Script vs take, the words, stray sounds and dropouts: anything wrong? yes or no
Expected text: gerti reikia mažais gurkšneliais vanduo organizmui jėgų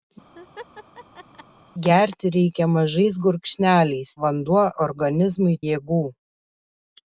yes